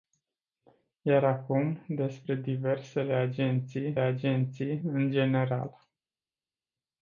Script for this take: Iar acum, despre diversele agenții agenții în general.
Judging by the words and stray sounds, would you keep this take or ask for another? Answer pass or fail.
pass